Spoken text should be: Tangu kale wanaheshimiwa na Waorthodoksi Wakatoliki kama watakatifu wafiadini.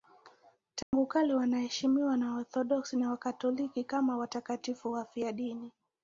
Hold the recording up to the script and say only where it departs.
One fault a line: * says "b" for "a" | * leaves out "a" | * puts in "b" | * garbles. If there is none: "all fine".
* puts in "na"